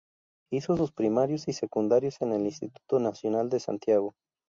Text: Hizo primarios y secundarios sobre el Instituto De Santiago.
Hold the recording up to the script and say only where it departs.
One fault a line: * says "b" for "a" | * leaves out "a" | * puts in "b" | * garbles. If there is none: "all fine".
* puts in "sus"
* says "en" for "sobre"
* puts in "Nacional"